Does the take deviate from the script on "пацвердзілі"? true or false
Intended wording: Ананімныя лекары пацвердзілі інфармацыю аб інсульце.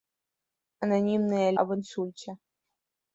true